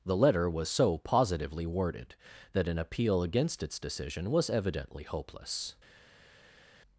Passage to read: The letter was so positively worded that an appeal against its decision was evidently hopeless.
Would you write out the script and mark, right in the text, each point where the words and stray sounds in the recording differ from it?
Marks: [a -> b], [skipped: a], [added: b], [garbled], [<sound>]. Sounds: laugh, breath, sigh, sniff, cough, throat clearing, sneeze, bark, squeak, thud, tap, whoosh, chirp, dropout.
The letter was so positively worded that an appeal against its decision was evidently hopeless.